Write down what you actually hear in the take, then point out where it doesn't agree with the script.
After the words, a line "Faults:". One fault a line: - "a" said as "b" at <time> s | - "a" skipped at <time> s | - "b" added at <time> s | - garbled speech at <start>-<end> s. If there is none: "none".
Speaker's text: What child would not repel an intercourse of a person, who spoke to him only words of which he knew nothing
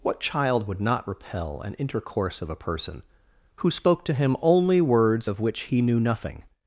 What child would not repel an intercourse of a person, who spoke to him only words of which he knew nothing
Faults:
none